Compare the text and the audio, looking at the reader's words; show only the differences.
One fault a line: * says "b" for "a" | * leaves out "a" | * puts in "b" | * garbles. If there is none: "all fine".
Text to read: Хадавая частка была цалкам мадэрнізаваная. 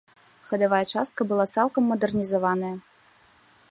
all fine